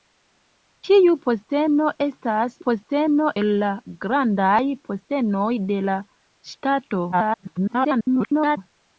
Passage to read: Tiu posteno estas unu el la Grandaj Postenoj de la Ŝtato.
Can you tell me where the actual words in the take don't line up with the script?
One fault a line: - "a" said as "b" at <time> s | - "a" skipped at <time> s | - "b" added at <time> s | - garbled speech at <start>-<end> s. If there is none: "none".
- "unu" said as "posteno" at 2.6 s
- garbled speech at 7.1-8.6 s